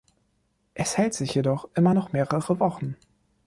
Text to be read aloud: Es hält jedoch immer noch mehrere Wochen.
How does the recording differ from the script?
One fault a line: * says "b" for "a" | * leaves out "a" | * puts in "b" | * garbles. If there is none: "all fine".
* puts in "sich"